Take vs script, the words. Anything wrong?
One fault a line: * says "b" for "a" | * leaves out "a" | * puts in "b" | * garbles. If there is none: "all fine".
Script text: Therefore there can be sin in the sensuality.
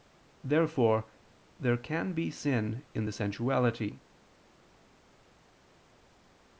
all fine